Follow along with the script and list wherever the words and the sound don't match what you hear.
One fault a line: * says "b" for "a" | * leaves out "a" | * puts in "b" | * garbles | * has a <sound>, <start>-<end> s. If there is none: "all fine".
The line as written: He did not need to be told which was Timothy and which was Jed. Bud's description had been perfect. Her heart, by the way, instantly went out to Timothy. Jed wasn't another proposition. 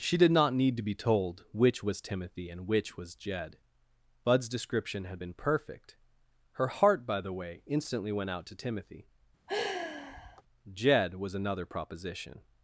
* says "She" for "He"
* has a sigh, 9.5-10.4 s
* says "was" for "wasn't"